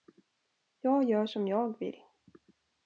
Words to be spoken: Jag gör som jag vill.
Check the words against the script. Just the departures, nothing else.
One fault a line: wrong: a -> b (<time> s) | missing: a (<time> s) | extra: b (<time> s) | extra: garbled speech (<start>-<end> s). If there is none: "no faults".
no faults